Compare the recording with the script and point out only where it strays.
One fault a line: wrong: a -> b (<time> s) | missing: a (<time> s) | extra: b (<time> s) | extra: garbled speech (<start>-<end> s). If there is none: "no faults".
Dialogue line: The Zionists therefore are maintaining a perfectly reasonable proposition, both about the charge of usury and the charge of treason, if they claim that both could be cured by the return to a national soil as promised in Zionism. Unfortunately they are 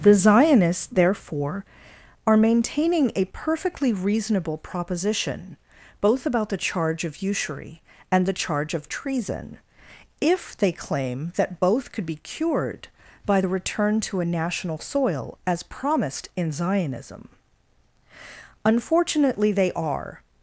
no faults